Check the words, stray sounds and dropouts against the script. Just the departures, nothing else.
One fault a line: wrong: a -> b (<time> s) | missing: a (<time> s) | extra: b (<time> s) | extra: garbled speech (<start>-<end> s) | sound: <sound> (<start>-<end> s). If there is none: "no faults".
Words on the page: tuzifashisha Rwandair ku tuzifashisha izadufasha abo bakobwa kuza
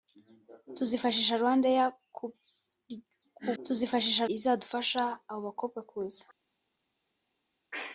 no faults